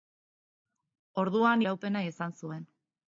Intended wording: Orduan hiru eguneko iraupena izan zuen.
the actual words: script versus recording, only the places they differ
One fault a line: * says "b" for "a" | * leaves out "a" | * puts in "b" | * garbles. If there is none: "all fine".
* leaves out "hiru eguneko"